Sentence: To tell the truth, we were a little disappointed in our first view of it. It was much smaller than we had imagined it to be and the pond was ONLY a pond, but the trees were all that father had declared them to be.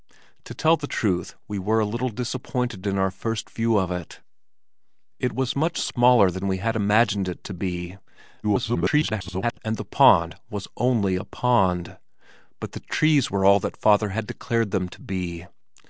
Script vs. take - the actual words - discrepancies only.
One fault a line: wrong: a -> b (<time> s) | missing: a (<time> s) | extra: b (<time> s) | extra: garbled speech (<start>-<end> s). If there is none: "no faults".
extra: garbled speech (8.4-9.6 s)